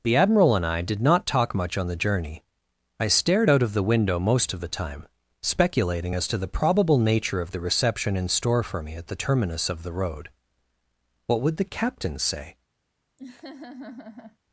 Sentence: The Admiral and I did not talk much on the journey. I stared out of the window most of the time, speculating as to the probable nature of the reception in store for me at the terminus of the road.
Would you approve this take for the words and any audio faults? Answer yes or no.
no